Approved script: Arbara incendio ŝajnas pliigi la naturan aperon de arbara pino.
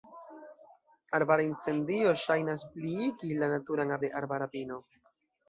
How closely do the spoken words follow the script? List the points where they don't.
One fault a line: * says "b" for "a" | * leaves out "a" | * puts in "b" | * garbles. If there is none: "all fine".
* leaves out "aperon"